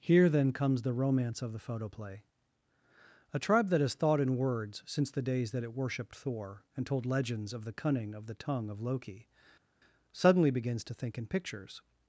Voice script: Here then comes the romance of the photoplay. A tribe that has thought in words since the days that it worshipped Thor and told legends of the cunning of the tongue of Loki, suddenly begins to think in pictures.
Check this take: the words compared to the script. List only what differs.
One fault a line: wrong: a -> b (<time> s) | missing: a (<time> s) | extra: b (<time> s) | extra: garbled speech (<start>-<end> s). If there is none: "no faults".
no faults